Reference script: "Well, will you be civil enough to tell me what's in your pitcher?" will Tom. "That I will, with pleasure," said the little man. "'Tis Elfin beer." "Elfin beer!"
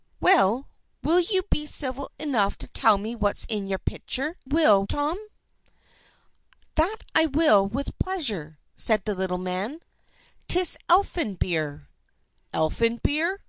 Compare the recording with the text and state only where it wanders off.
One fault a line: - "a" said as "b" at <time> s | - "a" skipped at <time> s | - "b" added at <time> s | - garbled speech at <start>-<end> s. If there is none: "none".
none